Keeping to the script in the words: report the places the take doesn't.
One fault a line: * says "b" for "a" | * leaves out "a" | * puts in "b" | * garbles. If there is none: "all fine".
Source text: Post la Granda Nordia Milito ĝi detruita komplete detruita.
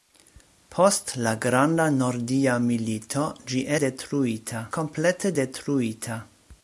all fine